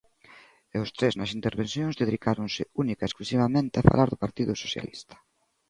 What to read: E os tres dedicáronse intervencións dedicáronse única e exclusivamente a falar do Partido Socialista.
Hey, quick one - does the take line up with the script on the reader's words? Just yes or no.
no